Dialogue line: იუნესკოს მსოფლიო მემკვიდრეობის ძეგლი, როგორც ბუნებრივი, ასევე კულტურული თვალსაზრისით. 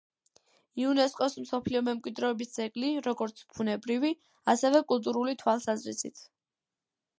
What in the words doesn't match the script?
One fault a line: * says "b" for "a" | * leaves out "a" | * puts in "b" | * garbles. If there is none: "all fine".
all fine